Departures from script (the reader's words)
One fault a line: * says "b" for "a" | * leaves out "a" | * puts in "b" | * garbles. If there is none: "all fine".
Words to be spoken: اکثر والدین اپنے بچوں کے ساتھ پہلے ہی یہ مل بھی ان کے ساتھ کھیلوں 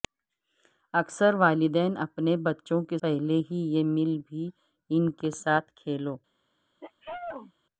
* leaves out "ساتھ"